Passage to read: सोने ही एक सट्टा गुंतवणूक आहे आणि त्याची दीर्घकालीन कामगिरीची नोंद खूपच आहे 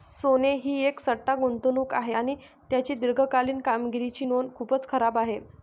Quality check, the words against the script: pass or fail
fail